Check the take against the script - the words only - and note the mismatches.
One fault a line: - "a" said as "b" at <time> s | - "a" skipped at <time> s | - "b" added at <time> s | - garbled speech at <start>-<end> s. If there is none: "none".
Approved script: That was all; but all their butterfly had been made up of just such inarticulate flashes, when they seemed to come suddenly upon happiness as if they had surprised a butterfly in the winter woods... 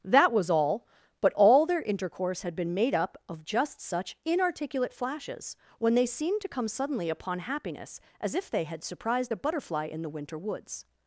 - "butterfly" said as "intercourse" at 1.8 s